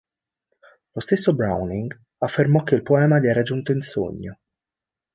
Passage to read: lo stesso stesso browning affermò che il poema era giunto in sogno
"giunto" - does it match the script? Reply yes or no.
yes